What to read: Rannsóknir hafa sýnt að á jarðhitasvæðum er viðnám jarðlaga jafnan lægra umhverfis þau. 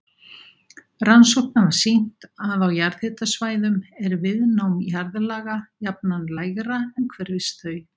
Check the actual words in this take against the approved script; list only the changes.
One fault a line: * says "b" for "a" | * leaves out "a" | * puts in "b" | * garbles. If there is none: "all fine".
all fine